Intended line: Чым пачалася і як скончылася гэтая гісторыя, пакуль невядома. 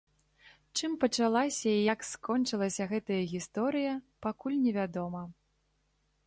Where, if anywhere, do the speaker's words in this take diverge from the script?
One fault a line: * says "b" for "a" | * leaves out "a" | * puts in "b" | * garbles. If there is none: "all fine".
all fine